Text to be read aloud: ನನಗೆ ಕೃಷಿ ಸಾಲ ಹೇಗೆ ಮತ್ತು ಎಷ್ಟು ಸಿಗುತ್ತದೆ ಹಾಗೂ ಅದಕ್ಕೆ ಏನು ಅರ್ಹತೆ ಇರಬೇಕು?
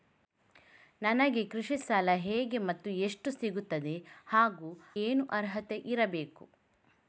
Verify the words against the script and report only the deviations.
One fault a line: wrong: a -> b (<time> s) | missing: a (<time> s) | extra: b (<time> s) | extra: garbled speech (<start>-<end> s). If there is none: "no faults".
missing: ಅದಕ್ಕೆ (4.7 s)